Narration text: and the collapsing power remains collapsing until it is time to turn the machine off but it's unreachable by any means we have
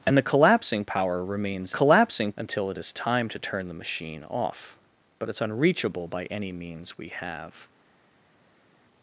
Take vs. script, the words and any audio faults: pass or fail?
pass